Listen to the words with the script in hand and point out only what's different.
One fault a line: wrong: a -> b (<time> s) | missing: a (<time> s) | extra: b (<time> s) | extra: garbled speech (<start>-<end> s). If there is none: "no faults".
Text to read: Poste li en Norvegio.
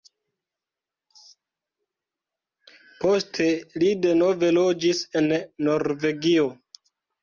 extra: denove loĝis (4.1 s)